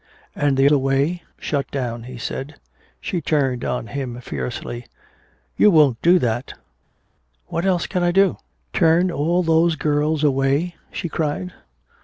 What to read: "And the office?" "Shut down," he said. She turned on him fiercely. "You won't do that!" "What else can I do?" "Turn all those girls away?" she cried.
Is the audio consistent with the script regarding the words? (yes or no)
no